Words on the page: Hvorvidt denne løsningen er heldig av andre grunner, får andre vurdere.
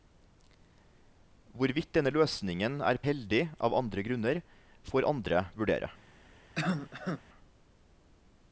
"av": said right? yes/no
yes